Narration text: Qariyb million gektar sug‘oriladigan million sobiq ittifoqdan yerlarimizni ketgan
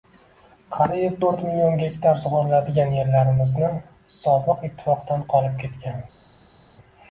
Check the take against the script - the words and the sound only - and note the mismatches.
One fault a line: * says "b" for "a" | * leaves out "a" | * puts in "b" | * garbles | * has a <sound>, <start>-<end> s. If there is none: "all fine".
* puts in "to'rt"
* says "yerlarimizni" for "million"
* says "qolib" for "yerlarimizni"